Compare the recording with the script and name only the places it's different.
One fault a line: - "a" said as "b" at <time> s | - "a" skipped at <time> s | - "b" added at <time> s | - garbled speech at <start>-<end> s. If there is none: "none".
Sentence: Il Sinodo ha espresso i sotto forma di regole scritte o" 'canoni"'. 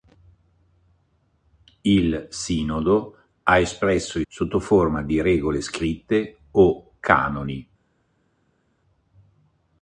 none